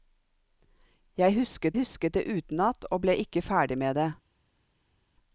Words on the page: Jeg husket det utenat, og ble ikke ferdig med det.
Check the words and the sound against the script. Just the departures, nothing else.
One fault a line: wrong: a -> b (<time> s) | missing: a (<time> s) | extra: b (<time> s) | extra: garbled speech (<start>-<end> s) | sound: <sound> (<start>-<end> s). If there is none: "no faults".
extra: husket (1.7 s)